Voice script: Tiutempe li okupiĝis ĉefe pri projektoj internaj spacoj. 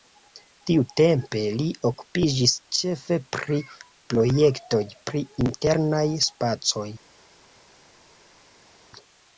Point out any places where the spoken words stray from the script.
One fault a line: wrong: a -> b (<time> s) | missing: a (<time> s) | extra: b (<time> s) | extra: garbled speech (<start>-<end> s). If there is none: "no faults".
extra: pri (5.1 s)